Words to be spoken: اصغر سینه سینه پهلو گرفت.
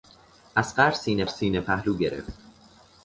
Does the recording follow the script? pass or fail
pass